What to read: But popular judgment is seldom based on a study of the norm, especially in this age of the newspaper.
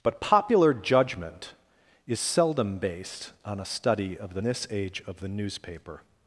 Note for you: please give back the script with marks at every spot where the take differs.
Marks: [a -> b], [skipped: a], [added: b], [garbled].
But popular judgment is seldom based on a study of the [skipped: norm, especially in] this age of the newspaper.